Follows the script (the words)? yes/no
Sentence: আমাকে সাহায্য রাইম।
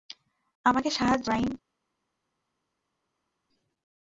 yes